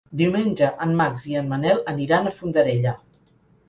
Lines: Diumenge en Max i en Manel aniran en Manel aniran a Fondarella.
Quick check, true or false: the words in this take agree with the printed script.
false